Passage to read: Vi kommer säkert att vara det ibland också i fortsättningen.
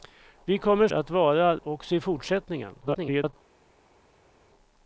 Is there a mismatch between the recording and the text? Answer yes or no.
yes